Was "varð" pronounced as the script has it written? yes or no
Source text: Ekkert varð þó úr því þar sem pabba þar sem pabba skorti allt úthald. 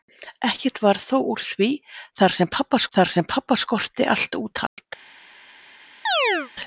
yes